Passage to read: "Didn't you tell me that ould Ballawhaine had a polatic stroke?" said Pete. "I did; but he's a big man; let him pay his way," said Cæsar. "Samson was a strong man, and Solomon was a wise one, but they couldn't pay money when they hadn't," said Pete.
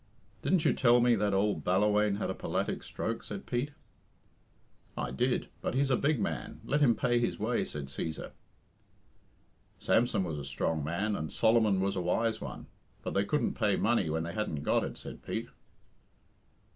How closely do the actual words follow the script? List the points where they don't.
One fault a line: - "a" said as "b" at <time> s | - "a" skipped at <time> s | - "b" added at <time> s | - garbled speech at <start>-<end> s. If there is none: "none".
- "got it" added at 14.6 s